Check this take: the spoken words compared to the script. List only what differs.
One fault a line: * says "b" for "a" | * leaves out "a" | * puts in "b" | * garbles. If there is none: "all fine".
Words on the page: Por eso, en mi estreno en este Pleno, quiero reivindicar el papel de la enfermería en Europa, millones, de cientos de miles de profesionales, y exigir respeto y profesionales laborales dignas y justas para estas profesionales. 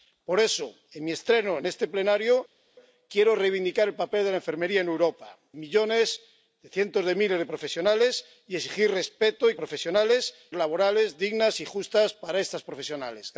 all fine